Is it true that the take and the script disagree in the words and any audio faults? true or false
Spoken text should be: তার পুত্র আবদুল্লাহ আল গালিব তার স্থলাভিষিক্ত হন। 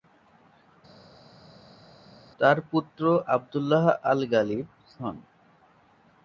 true